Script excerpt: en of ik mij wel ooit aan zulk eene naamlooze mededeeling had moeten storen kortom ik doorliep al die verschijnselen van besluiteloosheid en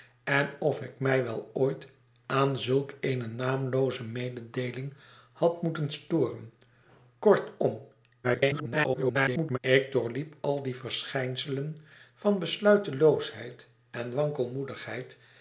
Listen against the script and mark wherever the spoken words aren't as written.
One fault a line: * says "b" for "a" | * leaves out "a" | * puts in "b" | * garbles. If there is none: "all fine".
* garbles